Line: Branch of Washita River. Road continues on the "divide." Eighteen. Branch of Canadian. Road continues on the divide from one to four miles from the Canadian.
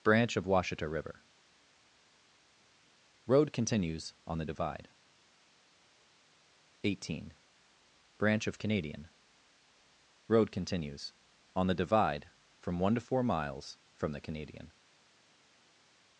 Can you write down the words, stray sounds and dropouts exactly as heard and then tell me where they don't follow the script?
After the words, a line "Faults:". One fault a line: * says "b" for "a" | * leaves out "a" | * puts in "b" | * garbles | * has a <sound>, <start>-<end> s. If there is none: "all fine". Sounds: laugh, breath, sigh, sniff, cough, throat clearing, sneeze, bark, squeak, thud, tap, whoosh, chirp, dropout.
Branch of Washita River. Road continues on the "divide." Eighteen. Branch of Canadian. Road continues on the divide from one to four miles from the Canadian.
Faults:
all fine